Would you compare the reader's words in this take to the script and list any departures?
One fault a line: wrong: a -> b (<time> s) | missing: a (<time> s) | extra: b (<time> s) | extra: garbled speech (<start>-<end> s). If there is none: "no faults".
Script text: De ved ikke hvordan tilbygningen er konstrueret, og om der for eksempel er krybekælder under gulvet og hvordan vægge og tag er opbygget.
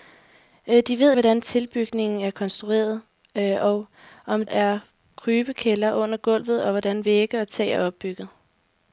missing: ikke (1.1 s)
missing: der for eksempel (4.5 s)